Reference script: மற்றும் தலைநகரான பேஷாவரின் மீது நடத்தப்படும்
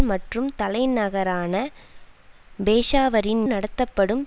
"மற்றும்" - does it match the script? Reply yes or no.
yes